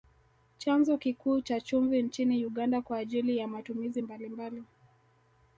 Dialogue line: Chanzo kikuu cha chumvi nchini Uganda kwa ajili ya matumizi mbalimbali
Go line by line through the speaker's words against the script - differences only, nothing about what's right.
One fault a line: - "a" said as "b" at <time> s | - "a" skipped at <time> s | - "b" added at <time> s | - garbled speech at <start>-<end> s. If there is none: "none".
none